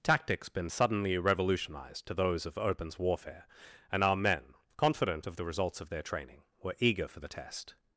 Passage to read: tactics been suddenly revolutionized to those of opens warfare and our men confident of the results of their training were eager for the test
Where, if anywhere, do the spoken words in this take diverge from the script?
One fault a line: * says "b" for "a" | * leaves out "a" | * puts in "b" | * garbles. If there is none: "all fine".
all fine